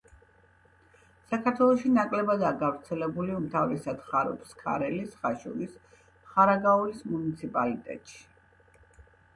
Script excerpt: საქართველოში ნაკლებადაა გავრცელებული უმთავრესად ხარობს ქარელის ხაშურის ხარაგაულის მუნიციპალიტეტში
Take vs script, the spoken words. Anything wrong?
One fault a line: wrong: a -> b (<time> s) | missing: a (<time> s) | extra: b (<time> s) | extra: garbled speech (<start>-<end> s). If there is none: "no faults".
no faults